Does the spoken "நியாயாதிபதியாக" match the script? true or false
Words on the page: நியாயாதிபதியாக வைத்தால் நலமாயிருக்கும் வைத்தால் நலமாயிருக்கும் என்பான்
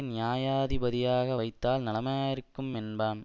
true